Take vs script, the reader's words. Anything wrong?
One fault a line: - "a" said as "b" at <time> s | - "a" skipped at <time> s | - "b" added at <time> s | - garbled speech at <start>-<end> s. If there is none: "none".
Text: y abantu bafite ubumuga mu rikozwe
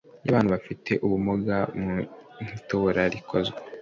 - "itora" added at 2.6 s